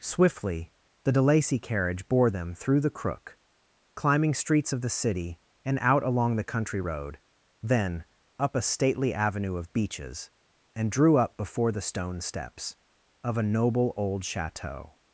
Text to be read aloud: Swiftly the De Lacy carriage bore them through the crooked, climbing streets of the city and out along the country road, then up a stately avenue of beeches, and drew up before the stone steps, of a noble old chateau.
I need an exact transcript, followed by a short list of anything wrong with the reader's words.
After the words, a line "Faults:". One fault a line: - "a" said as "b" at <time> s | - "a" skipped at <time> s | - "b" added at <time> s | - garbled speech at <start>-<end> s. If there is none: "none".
Swiftly the De Lacy carriage bore them through the crook, climbing streets of the city and out along the country road, then up a stately avenue of beeches, and drew up before the stone steps, of a noble old chateau.
Faults:
- "crooked" said as "crook" at 2.9 s